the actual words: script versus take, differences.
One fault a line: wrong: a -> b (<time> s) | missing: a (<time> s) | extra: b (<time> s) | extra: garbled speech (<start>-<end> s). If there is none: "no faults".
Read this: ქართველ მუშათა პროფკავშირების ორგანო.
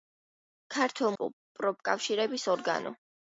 missing: მუშათა (1.1 s)